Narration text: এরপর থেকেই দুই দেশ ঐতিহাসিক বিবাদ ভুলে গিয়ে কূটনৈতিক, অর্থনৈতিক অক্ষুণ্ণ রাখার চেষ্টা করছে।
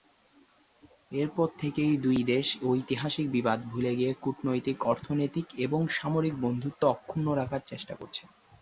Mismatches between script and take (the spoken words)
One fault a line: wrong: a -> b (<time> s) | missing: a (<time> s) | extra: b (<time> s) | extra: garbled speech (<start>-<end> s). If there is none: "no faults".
extra: এবং সামরিক বন্ধুত্ব (5.6 s)